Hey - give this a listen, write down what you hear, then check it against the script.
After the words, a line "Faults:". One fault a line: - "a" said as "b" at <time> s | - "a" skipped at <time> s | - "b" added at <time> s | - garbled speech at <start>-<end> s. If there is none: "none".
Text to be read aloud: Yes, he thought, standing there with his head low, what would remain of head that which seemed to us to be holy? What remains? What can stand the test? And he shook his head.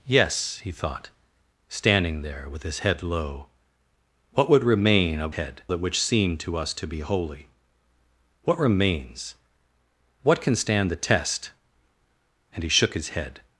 Yes, he thought, standing there with his head low, what would remain of head that which seemed to us to be holy? What remains? What can stand the test? And he shook his head.
Faults:
none